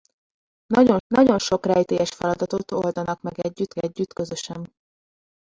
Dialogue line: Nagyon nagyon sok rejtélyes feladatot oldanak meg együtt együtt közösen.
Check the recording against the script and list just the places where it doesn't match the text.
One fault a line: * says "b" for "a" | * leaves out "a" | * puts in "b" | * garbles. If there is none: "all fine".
all fine